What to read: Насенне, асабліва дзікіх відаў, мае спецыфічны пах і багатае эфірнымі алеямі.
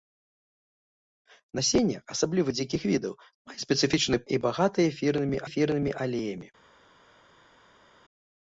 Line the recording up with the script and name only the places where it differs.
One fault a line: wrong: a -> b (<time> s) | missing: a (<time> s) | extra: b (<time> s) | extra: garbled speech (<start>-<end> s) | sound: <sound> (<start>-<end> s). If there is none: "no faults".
missing: пах (4.2 s)
extra: эфірнымі (5.5 s)